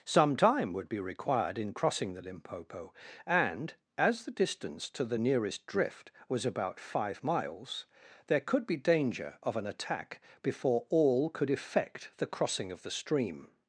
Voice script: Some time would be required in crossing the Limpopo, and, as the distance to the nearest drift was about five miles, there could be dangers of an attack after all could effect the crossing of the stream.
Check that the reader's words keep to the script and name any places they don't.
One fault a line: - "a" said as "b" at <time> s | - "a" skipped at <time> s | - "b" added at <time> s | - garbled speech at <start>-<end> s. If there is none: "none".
- "dangers" said as "danger" at 8.8 s
- "after" said as "before" at 10.4 s